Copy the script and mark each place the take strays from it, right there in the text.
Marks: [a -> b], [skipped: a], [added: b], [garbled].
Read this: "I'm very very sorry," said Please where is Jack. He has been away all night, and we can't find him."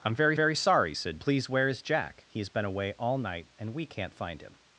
"I'm very very sorry," said Please where is Jack. He has been away all night, and we can't find him."